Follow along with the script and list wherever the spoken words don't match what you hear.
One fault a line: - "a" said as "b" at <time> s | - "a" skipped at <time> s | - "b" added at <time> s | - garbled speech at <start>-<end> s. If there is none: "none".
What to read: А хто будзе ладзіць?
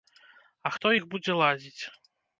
- "іх" added at 1.0 s